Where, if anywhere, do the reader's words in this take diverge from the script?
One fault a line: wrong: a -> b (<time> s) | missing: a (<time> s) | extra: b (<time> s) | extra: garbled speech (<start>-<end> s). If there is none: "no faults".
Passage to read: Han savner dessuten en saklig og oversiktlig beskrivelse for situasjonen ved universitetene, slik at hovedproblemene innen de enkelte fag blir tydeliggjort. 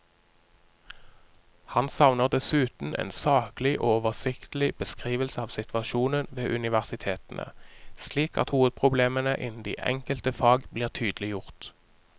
wrong: for -> av (5.4 s)